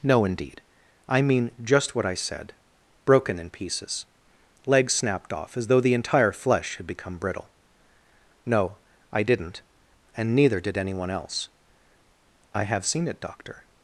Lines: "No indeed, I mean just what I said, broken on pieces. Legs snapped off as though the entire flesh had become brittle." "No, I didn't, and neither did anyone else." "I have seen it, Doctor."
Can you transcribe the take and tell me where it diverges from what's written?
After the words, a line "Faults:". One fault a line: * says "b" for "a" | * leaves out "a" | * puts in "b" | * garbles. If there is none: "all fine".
"No indeed, I mean just what I said, broken in pieces. Legs snapped off as though the entire flesh had become brittle." "No, I didn't, and neither did anyone else." "I have seen it, Doctor."
Faults:
* says "in" for "on"